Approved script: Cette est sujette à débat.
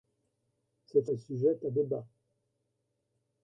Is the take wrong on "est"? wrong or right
right